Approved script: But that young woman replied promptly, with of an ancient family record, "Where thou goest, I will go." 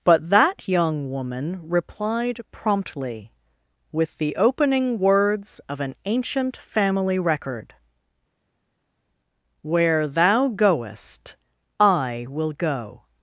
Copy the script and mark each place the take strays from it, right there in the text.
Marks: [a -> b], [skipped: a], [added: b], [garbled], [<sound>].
But that young woman replied promptly, with [added: the opening words] of an ancient family record, "Where thou goest, I will go."